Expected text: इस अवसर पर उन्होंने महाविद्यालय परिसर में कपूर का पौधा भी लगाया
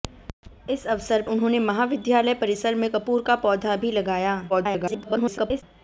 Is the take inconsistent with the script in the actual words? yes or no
yes